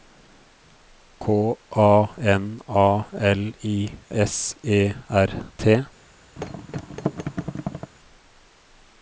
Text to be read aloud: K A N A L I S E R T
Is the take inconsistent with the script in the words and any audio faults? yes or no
yes